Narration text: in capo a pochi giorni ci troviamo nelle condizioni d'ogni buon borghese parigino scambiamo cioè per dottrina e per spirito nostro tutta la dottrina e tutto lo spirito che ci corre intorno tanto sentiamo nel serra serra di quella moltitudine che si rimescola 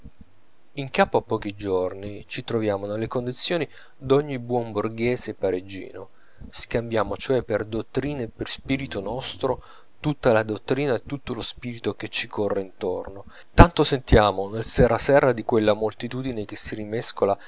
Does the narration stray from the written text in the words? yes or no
no